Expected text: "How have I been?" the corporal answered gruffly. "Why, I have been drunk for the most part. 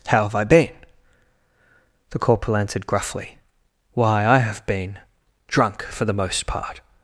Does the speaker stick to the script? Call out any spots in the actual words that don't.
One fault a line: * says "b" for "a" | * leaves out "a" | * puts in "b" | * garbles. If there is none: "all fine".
all fine